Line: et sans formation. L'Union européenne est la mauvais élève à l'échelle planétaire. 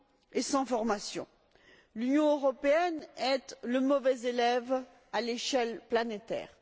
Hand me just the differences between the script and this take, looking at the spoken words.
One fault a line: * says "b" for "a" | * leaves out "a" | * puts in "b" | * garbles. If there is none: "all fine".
* says "le" for "la"